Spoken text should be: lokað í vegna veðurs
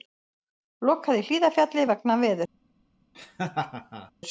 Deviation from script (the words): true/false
true